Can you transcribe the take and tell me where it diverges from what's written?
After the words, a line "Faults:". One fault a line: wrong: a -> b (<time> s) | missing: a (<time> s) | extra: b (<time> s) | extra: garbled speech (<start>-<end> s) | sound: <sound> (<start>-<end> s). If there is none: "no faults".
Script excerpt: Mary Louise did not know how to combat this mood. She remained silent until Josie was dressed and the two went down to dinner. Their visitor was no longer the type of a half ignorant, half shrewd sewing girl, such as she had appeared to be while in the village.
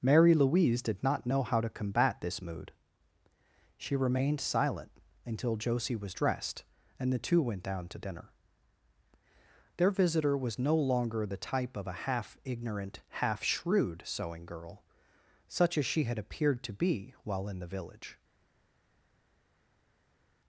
Mary Louise did not know how to combat this mood. She remained silent until Josie was dressed and the two went down to dinner. Their visitor was no longer the type of a half ignorant, half shrewd sewing girl, such as she had appeared to be while in the village.
Faults:
no faults